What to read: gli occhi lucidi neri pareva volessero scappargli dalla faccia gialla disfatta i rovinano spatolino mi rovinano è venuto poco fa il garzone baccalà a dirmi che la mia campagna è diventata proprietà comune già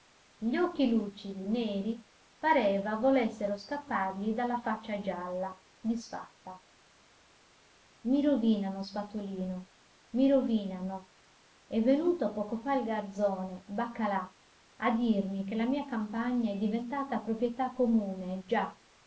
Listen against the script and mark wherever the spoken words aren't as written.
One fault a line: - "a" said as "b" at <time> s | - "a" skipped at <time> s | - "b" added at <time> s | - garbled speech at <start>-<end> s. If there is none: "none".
none